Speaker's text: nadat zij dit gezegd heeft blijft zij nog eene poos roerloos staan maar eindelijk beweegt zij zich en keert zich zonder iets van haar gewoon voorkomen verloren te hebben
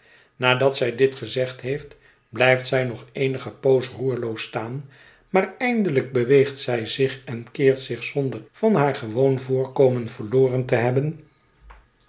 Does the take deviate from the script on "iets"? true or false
true